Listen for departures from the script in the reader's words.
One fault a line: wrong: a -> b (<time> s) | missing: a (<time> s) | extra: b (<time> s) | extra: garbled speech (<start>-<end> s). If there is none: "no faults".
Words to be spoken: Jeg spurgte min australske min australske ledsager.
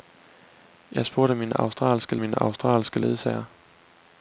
no faults